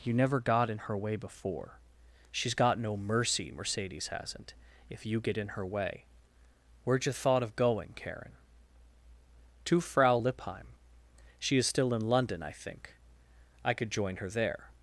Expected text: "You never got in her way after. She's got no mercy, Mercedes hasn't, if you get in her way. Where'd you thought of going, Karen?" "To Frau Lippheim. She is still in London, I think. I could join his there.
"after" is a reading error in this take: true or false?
true